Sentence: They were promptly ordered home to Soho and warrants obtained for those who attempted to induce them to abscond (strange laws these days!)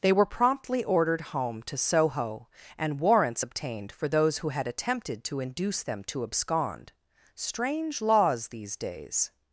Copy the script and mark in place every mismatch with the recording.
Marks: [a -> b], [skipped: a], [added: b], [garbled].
They were promptly ordered home to Soho and warrants obtained for those who [added: had] attempted to induce them to abscond (strange laws these days!)